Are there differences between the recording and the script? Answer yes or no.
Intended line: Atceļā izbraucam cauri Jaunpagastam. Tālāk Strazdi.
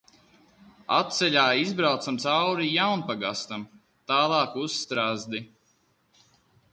yes